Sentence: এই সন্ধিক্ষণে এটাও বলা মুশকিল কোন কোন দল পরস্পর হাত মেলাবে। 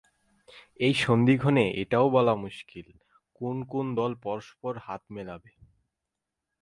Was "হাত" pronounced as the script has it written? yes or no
yes